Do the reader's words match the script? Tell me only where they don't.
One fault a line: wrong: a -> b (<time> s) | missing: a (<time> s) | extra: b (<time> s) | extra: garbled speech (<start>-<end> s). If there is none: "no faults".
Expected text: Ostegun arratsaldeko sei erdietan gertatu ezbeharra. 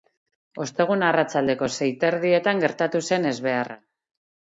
extra: eta (1.9 s)
extra: zen (3.1 s)